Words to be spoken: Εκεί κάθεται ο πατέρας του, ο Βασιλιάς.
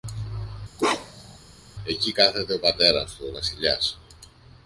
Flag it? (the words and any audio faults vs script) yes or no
yes